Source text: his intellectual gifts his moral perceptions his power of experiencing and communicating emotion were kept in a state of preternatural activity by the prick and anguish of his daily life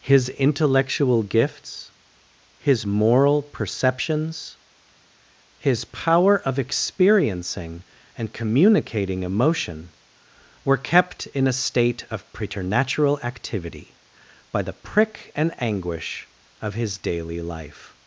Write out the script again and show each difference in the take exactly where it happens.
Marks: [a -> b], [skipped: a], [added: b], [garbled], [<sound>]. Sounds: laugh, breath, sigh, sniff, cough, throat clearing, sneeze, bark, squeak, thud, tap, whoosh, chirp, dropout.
his intellectual gifts his moral perceptions his power of experiencing and communicating emotion were kept in a state of preternatural activity by the prick and anguish of his daily life